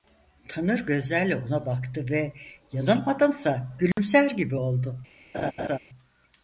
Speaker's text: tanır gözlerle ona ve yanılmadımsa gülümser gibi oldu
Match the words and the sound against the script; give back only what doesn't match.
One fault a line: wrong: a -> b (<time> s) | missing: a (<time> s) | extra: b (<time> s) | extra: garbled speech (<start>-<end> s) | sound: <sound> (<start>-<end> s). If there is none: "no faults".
extra: baktı (1.6 s)
sound: dropout (3.9-4.0 s)
sound: laugh (5.3-5.8 s)